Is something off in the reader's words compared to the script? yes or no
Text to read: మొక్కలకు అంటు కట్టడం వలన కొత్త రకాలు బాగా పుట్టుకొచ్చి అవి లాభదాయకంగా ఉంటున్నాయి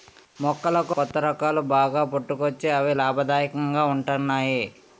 yes